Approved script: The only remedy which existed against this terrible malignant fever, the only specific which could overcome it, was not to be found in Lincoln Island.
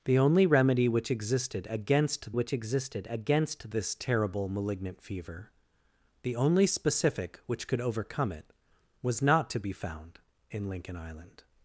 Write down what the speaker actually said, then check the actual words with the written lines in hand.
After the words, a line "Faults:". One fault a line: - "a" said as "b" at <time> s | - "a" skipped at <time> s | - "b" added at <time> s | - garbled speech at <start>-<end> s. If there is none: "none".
The only remedy which existed against which existed against this terrible malignant fever, the only specific which could overcome it, was not to be found in Lincoln Island.
Faults:
- "which existed against" added at 2.3 s